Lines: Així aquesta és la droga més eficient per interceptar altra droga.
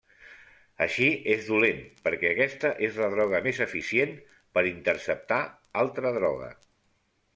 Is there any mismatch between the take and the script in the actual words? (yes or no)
yes